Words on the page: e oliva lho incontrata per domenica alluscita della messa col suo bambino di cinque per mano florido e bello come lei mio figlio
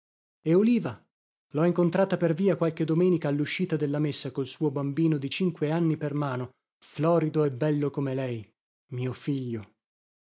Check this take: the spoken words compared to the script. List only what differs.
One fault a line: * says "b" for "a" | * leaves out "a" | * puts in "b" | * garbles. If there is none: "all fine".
* puts in "via qualche"
* puts in "anni"